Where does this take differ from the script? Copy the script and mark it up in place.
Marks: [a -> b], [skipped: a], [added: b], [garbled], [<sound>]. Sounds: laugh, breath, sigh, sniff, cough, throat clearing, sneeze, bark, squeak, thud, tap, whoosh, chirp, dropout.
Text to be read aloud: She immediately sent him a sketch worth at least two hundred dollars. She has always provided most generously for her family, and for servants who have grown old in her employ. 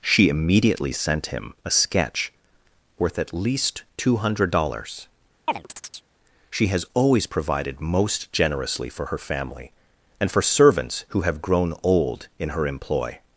She immediately sent him a sketch worth at least two hundred dollars. [chirp] She has always provided most generously for her family, and for servants who have grown old in her employ.